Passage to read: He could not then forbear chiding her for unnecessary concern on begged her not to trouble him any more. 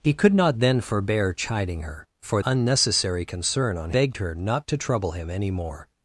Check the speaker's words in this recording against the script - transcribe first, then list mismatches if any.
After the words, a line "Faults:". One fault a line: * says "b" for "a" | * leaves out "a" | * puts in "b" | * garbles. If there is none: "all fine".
He could not then forbear chiding her for unnecessary concern on begged her not to trouble him any more.
Faults:
all fine